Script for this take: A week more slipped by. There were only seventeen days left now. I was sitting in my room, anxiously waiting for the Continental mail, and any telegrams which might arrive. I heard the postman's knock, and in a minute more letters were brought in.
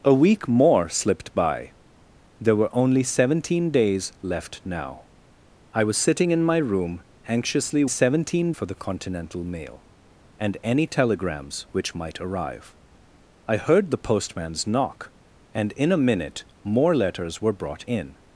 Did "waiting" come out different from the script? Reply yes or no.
yes